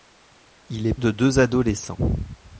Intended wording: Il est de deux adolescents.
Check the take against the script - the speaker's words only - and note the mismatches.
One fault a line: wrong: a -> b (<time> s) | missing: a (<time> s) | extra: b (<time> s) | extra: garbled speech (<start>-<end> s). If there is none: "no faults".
no faults